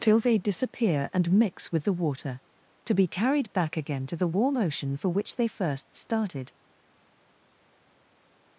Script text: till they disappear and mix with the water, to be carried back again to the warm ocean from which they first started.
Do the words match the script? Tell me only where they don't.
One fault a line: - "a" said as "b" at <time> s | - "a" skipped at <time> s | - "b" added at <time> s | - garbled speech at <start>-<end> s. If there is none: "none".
- "from" said as "for" at 5.0 s